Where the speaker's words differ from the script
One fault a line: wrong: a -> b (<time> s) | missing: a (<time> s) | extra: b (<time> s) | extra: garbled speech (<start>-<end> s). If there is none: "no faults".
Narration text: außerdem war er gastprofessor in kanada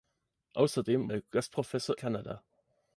missing: war (1.1 s)
missing: in (2.0 s)